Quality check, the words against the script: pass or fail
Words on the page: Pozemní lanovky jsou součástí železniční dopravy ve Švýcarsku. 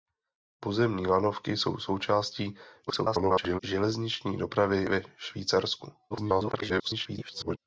fail